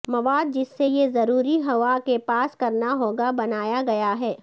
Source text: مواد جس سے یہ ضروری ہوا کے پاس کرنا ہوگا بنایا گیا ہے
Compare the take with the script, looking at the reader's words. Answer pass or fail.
pass